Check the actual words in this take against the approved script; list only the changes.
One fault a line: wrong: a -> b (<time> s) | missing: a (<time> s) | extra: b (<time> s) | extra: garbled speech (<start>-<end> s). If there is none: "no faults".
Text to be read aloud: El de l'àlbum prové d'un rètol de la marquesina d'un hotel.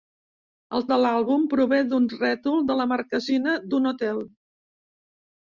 no faults